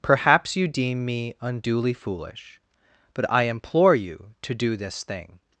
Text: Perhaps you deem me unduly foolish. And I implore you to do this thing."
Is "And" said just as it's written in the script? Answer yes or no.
no